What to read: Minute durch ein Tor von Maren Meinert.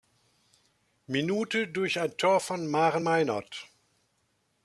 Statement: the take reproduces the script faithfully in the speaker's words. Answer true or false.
true